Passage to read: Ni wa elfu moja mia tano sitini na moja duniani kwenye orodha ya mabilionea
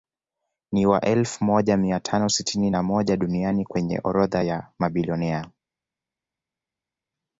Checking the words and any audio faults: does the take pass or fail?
pass